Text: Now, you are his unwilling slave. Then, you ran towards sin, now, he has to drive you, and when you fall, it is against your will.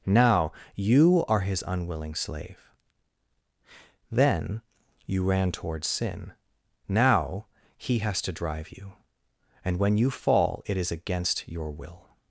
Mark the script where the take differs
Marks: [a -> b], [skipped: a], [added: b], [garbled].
Now, you are his unwilling slave. Then, you ran towards sin, now, he has to drive you, and when you fall, it is against your will.